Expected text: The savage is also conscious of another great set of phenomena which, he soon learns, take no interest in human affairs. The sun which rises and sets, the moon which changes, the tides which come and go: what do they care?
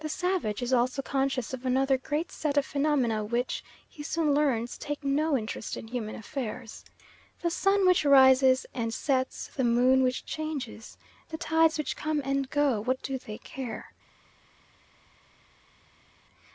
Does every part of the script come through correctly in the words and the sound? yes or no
yes